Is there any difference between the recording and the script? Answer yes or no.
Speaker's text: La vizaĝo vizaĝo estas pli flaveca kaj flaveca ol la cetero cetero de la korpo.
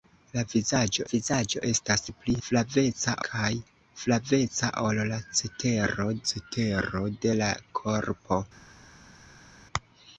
no